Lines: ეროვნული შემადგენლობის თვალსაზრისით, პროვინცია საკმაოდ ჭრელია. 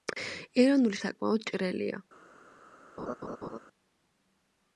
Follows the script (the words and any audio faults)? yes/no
no